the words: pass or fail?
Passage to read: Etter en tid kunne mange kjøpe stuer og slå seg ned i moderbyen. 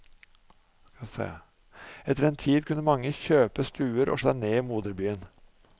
fail